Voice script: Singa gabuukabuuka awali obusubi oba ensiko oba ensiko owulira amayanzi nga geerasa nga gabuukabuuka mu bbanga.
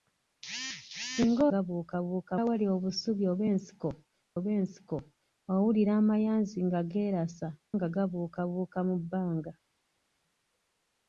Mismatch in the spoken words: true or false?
false